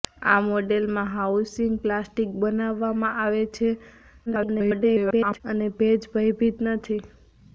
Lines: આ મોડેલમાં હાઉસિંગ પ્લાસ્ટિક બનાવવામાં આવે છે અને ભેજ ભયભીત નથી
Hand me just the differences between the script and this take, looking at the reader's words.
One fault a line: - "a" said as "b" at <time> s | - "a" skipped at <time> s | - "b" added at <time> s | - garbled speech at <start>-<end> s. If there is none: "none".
- garbled speech at 4.3-5.4 s